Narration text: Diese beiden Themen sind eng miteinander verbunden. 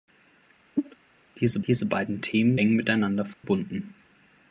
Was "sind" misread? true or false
true